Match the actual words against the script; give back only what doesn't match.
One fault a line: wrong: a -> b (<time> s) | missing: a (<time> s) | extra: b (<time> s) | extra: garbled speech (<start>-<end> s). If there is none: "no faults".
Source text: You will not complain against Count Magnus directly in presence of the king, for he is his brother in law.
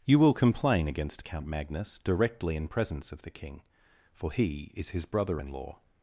missing: not (0.3 s)